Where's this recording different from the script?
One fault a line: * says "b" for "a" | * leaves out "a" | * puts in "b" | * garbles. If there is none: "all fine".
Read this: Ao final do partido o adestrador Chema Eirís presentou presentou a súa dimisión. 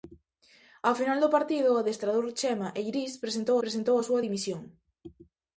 all fine